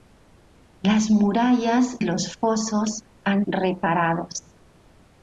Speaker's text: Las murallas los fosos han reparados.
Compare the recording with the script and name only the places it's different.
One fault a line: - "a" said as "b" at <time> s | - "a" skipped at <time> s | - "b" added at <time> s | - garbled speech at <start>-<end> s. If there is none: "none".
none